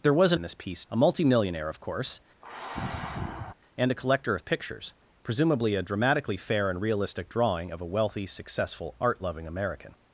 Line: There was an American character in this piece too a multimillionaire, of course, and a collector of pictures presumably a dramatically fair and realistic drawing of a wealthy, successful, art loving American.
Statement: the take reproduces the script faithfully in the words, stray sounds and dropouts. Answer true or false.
false